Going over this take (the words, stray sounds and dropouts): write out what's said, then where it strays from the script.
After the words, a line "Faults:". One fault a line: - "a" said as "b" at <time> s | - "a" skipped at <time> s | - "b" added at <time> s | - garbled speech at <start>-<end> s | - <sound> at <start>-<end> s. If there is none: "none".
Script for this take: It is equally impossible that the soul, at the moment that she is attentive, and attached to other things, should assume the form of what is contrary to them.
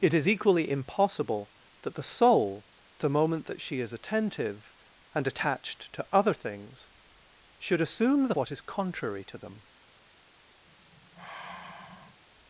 It is equally impossible that the soul, the moment that she is attentive, and attached to other things, should assume the what is contrary to them.
Faults:
- "at" skipped at 2.6 s
- "form of" skipped at 8.3 s
- sigh at 10.7-12.2 s